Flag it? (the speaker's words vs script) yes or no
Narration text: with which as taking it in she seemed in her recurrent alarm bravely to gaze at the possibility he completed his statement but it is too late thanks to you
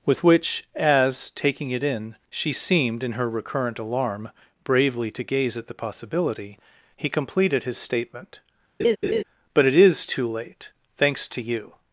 no